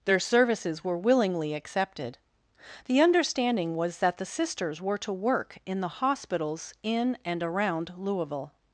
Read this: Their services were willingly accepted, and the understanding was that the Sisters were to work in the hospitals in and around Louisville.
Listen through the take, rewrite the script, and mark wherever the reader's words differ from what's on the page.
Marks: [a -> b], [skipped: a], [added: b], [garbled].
Their services were willingly accepted, [skipped: and] the understanding was that the Sisters were to work in the hospitals in and around Louisville.